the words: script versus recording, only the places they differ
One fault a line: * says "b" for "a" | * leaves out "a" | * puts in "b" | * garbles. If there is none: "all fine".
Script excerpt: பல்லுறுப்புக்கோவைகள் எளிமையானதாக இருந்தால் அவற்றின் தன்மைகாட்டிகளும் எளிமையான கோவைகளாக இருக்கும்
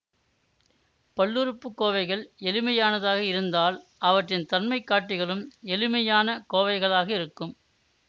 all fine